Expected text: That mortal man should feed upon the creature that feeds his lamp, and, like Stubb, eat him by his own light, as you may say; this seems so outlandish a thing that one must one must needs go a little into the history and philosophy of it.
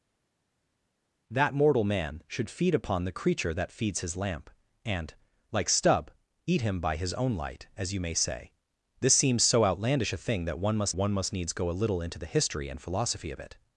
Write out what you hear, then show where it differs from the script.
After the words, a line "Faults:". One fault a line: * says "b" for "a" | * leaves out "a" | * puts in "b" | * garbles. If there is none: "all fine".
That mortal man should feed upon the creature that feeds his lamp, and, like Stubb, eat him by his own light, as you may say; this seems so outlandish a thing that one must one must needs go a little into the history and philosophy of it.
Faults:
all fine